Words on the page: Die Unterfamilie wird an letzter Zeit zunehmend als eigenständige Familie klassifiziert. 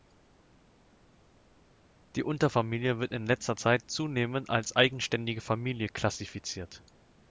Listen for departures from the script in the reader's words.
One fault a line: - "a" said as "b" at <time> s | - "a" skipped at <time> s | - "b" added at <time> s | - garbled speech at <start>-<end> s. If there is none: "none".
- "an" said as "in" at 3.1 s